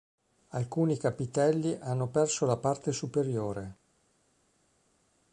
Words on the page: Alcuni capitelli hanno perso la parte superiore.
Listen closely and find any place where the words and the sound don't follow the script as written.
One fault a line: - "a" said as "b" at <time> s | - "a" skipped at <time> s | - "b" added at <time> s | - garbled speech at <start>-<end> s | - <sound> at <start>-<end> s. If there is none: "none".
none